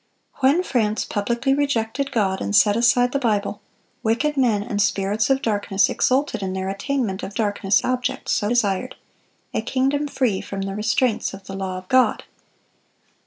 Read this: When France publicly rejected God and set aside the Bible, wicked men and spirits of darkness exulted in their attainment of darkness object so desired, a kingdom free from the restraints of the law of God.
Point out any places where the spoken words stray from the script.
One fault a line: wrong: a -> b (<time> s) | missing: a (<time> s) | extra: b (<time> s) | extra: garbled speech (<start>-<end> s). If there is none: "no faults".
no faults